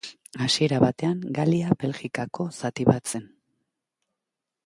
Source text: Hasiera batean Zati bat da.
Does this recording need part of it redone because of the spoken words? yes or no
yes